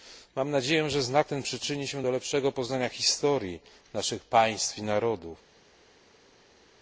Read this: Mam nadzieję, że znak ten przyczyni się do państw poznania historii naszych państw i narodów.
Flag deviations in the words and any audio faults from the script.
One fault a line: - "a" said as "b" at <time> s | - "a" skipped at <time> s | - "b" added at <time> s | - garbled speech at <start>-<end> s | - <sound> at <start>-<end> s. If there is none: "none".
- "państw" said as "lepszego" at 2.1 s